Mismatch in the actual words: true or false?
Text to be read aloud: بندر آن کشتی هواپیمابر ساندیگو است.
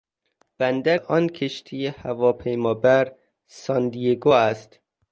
false